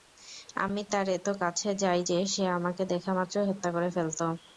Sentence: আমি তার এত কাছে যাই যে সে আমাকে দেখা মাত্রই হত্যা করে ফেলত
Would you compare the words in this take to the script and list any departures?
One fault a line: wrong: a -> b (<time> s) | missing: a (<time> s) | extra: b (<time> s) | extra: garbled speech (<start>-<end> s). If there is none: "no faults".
no faults